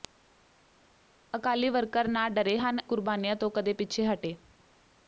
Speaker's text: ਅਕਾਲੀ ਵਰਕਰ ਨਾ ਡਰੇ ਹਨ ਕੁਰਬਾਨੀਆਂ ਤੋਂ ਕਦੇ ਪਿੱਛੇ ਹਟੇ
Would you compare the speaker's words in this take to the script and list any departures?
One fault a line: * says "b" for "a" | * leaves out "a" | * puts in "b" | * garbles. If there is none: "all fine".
all fine